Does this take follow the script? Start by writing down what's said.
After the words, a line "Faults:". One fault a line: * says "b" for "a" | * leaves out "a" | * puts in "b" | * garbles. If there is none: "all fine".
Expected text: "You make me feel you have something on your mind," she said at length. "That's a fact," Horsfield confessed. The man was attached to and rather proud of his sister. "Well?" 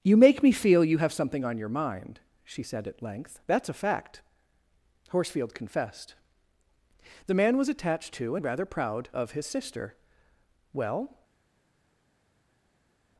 "You make me feel you have something on your mind," she said at length. "That's a fact," Horsfield confessed. The man was attached to and rather proud of his sister. "Well?"
Faults:
all fine